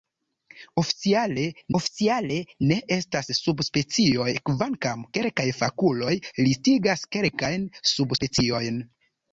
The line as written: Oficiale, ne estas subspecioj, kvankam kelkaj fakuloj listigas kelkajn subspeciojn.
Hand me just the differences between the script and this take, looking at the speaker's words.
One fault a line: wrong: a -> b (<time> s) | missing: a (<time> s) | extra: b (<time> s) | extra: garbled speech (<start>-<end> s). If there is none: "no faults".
extra: oficiale (1.8 s)